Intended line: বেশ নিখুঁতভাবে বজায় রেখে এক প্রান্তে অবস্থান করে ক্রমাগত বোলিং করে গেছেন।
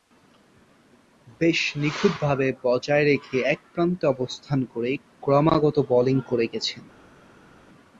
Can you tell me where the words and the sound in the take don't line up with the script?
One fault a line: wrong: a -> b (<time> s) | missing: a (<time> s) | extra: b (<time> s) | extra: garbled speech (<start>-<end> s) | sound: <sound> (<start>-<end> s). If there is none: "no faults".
no faults